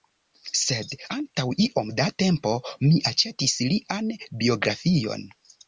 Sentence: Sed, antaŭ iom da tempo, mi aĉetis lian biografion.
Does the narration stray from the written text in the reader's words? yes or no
no